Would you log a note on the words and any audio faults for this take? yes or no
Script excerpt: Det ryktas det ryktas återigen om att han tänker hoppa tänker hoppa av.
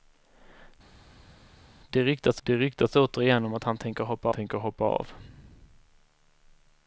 no